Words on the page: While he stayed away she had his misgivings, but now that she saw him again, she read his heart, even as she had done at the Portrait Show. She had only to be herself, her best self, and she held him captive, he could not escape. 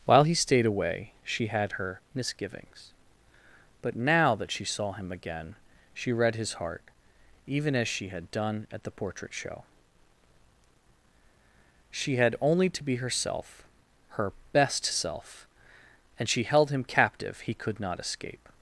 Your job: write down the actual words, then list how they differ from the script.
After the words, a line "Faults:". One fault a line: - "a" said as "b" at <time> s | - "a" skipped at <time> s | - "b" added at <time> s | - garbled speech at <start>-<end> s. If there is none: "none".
While he stayed away she had her misgivings, but now that she saw him again, she read his heart, even as she had done at the Portrait Show. She had only to be herself, her best self, and she held him captive, he could not escape.
Faults:
- "his" said as "her" at 1.7 s